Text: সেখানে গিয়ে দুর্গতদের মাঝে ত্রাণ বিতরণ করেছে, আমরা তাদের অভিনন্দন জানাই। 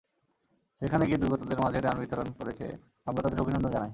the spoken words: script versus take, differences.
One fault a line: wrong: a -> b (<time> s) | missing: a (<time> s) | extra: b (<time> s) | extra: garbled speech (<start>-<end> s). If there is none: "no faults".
no faults